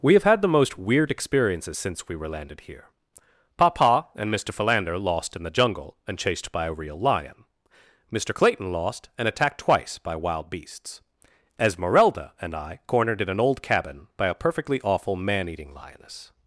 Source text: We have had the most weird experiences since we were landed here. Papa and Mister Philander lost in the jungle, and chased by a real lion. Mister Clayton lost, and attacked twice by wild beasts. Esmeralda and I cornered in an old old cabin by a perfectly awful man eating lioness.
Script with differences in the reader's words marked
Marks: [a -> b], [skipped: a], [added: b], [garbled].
We have had the most weird experiences since we were landed here. Papa and Mister Philander lost in the jungle, and chased by a real lion. Mister Clayton lost, and attacked twice by wild beasts. Esmeralda and I cornered in an old [skipped: old] cabin by a perfectly awful man eating lioness.